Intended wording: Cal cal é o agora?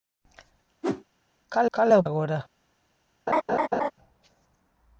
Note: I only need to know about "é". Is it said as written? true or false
true